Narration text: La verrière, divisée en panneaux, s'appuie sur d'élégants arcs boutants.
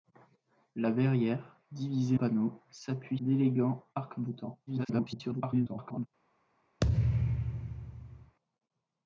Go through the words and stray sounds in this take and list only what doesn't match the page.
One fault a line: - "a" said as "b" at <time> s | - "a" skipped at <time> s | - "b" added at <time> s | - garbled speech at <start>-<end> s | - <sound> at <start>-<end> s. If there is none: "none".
- "en" skipped at 2.2 s
- "sur" skipped at 3.2 s
- garbled speech at 4.7-6.1 s
- thud at 6.8-8.4 s